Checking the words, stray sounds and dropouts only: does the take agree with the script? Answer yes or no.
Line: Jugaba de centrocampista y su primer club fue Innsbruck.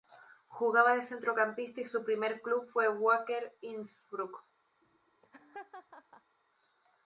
no